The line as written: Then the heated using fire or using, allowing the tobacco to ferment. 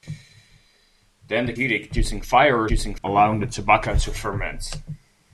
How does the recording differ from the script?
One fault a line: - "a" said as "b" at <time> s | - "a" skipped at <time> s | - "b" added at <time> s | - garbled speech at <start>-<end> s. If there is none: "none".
none